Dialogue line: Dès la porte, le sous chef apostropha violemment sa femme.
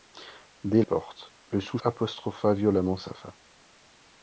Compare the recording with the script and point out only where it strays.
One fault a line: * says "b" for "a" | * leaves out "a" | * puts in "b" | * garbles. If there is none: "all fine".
* leaves out "la"
* leaves out "chef"